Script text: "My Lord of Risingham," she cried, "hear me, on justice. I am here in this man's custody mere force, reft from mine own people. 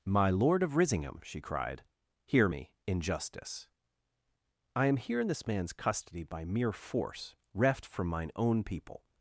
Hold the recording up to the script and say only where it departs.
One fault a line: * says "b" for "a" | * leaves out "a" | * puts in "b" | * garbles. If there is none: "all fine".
* says "in" for "on"
* puts in "by"